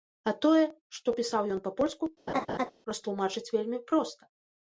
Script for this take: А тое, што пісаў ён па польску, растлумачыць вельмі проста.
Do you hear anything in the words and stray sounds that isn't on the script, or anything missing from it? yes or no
yes